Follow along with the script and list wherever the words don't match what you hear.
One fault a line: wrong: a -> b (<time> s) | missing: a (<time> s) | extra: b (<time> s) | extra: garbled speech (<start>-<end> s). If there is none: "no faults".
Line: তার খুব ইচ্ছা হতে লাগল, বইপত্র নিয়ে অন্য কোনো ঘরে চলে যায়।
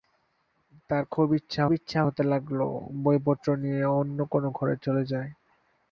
extra: ইচ্ছা (1.7 s)